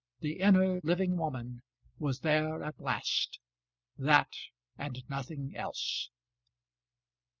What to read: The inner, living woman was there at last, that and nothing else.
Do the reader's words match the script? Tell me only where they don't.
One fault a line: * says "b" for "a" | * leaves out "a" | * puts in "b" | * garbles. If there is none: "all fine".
all fine